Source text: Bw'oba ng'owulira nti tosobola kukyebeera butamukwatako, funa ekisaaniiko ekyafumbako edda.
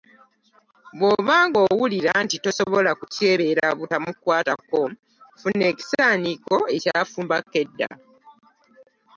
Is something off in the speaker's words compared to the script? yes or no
no